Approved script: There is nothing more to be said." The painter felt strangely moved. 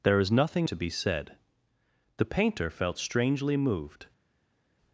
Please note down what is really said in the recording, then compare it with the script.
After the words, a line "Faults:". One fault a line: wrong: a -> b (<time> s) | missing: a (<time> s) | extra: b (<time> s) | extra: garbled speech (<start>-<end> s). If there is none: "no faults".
There is nothing to be said." The painter felt strangely moved.
Faults:
missing: more (0.7 s)